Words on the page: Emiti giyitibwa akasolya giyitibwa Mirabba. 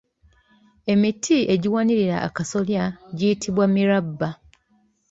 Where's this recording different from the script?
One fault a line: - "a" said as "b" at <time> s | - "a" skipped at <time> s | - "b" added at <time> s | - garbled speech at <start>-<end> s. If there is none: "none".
- "giyitibwa" said as "egiwanirira" at 1.5 s